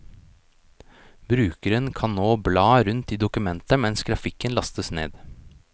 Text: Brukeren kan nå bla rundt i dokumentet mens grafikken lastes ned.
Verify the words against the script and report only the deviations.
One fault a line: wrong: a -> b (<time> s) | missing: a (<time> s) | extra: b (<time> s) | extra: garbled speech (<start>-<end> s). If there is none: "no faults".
no faults